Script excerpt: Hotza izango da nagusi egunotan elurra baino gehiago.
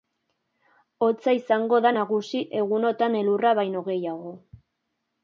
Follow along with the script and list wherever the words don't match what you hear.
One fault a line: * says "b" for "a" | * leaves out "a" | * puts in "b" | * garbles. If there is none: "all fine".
all fine